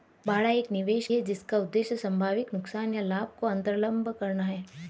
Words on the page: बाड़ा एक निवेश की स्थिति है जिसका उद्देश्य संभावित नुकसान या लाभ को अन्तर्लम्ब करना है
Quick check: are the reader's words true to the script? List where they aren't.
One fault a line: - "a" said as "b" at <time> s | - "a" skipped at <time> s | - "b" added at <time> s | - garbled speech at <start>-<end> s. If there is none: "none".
- "की स्थिति" skipped at 1.1 s